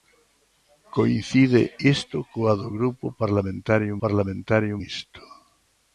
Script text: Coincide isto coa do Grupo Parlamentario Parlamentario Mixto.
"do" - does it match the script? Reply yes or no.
yes